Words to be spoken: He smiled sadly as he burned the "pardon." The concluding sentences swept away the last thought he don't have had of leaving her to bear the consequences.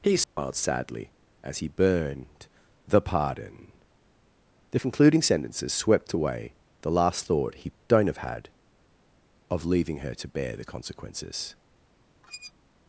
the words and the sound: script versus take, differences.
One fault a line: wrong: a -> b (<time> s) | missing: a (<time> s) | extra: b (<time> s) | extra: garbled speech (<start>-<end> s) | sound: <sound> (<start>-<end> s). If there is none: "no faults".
sound: dropout (0.2-0.4 s)
sound: squeak (12.2-12.5 s)